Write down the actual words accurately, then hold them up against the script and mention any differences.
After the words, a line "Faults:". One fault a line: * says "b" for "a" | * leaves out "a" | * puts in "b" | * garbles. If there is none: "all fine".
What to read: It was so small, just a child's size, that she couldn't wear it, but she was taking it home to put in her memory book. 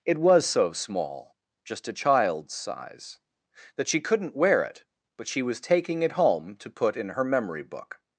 It was so small, just a child's size, that she couldn't wear it, but she was taking it home to put in her memory book.
Faults:
all fine